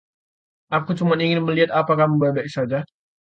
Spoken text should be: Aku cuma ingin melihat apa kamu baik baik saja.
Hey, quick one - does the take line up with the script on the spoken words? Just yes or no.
yes